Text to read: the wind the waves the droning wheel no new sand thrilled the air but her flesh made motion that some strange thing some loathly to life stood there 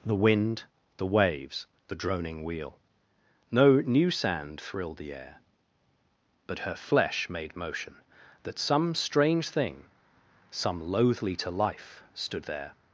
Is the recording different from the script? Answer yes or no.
no